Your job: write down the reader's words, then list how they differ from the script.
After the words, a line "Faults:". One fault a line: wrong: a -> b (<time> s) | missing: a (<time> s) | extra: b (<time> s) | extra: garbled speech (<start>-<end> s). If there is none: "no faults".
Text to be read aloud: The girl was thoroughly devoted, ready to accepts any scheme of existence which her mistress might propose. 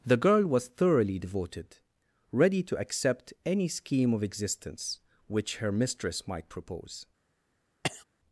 The girl was thoroughly devoted, ready to accept any scheme of existence which her mistress might propose.
Faults:
wrong: accepts -> accept (2.8 s)